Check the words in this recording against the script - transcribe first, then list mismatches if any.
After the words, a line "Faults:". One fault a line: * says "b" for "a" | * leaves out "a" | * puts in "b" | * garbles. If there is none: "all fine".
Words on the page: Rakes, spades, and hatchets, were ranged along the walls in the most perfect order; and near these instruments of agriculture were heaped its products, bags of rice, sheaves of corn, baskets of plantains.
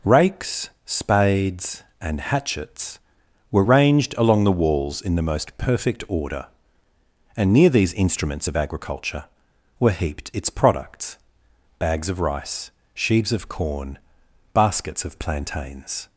Rakes, spades, and hatchets, were ranged along the walls in the most perfect order; and near these instruments of agriculture were heaped its products, bags of rice, sheaves of corn, baskets of plantains.
Faults:
all fine